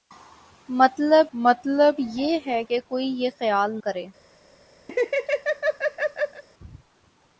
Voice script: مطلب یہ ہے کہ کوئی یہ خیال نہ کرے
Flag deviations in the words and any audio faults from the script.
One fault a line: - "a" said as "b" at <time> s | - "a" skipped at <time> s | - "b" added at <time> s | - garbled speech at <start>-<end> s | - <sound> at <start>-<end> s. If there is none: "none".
- "مطلب" added at 1.3 s
- "نہ" skipped at 3.8 s
- laugh at 4.9-6.4 s